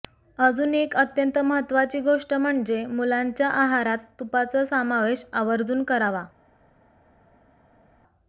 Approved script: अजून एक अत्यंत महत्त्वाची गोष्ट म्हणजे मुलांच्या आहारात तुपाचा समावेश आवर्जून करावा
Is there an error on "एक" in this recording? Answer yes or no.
no